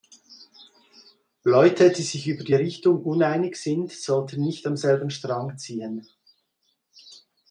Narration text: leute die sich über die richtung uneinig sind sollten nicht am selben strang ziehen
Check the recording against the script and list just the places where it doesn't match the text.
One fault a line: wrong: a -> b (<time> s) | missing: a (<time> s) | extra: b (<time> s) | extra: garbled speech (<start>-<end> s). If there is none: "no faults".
no faults